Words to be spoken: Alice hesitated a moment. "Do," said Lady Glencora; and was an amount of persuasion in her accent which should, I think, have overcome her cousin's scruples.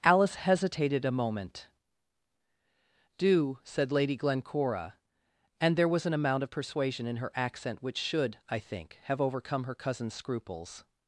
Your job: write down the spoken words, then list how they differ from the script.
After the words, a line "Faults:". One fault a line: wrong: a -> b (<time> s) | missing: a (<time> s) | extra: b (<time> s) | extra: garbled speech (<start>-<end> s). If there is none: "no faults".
Alice hesitated a moment. "Do," said Lady Glencora; and there was an amount of persuasion in her accent which should, I think, have overcome her cousin's scruples.
Faults:
extra: there (5.8 s)